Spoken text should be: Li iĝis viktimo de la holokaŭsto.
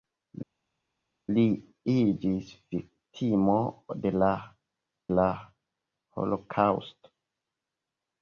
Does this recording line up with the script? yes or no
no